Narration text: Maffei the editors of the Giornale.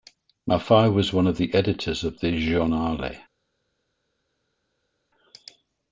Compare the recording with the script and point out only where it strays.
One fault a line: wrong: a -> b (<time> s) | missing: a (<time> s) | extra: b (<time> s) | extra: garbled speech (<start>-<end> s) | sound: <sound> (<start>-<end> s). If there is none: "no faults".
extra: was one of (0.9 s)